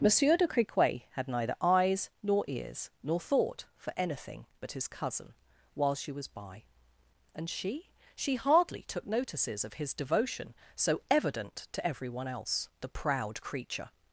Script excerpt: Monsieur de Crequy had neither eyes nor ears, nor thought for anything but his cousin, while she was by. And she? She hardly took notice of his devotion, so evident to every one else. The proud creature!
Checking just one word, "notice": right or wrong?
wrong